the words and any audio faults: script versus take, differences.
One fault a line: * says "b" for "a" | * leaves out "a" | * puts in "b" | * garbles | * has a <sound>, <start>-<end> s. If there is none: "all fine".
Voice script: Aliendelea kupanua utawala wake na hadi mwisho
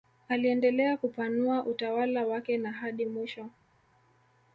all fine